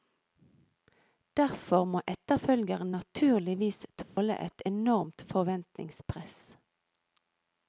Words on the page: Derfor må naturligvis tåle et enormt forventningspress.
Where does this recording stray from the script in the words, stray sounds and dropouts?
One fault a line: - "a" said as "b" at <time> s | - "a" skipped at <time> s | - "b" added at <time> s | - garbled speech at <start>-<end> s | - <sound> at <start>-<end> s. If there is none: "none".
- "etterfølgeren" added at 2.1 s
- dropout at 4.0-4.2 s